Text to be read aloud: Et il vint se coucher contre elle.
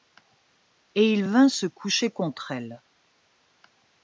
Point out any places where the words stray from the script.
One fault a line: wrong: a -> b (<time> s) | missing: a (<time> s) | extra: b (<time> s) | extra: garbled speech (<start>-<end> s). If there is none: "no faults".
no faults